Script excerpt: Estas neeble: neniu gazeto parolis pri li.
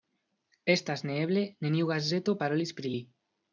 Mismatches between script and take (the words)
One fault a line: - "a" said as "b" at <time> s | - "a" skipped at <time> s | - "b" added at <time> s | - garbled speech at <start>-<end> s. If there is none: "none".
none